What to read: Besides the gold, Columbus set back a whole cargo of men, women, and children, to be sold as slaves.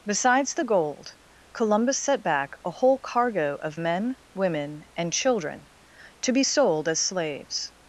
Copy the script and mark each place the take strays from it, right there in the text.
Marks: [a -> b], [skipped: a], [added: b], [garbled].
Besides the gold, Columbus set back a whole cargo of men, women, and children, to be sold as slaves.